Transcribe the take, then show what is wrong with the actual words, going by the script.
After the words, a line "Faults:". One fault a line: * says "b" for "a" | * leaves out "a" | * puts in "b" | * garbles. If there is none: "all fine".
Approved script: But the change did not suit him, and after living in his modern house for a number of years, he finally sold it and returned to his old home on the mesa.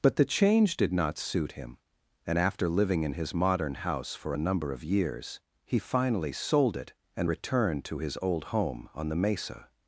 But the change did not suit him, and after living in his modern house for a number of years, he finally sold it and returned to his old home on the mesa.
Faults:
all fine